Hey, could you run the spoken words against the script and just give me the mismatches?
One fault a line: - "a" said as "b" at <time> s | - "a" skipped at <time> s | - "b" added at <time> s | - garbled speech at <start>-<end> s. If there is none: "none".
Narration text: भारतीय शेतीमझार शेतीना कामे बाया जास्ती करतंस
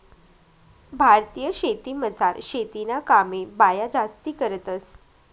none